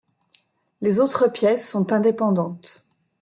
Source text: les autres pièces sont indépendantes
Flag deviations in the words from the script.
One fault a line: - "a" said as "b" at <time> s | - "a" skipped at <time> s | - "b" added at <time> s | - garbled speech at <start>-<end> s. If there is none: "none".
none